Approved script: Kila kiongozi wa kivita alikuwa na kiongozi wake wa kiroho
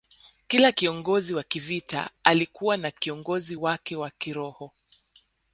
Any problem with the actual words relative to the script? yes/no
no